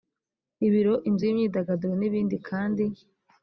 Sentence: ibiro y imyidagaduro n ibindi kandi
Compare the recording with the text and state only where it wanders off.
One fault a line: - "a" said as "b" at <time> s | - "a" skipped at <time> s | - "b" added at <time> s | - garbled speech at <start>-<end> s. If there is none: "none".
- "inzu" added at 1.1 s